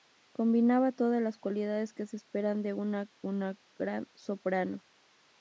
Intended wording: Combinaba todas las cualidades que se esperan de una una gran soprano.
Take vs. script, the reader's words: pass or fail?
pass